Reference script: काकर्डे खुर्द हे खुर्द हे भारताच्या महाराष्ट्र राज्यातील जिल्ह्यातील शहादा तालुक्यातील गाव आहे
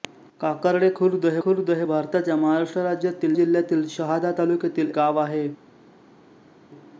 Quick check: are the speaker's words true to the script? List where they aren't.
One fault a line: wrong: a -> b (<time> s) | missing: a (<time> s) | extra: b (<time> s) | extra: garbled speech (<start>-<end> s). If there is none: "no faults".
no faults